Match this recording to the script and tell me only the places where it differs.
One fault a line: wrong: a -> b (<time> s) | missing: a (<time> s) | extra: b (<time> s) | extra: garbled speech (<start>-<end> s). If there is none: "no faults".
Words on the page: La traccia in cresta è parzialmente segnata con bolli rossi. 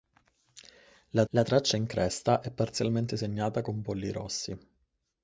extra: la (1.3 s)